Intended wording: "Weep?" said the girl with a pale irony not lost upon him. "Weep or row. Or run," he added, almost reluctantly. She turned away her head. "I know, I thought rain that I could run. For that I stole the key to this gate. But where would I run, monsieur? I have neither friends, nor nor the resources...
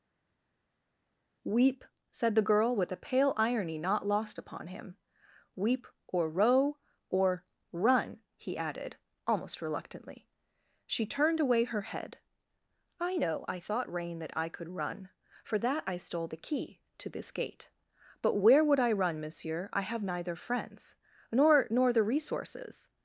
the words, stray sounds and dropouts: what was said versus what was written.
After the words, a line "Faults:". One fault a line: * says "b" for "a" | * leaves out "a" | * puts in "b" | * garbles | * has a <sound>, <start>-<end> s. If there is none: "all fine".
"Weep?" said the girl with a pale irony not lost upon him. "Weep or row. Or run," he added, almost reluctantly. She turned away her head. "I know, I thought rain that I could run. For that I stole the key to this gate. But where would I run, monsieur? I have neither friends, nor nor the resources...
Faults:
all fine